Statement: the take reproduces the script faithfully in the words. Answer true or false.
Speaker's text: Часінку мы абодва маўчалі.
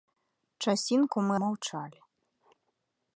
false